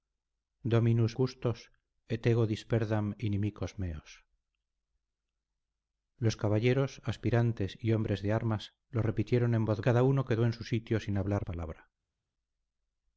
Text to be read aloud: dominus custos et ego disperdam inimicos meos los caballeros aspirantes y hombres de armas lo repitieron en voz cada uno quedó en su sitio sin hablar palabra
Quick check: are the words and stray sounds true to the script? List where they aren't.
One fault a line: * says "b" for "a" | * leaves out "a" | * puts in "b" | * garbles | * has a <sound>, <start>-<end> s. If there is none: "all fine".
all fine